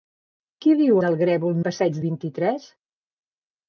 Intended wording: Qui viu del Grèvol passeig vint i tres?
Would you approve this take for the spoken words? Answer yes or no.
yes